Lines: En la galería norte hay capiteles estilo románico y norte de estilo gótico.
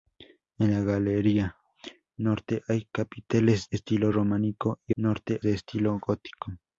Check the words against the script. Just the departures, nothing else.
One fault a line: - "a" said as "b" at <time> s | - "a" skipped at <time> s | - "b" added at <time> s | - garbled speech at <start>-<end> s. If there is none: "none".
none